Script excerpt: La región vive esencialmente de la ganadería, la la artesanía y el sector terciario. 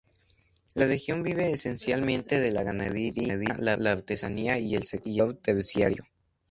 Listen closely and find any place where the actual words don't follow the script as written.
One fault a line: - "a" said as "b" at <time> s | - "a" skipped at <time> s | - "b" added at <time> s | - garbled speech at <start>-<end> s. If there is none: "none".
none